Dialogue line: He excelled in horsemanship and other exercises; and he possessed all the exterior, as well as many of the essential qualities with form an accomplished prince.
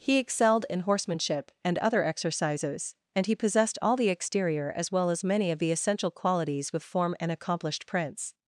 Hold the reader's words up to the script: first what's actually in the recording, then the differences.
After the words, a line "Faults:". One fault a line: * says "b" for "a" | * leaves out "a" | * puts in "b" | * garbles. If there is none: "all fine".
He excelled in horsemanship and other exercises; and he possessed all the exterior, as well as many of the essential qualities with form an accomplished prince.
Faults:
all fine